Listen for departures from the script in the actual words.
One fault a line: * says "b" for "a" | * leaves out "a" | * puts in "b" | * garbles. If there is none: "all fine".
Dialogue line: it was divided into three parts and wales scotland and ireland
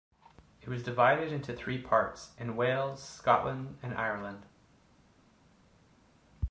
all fine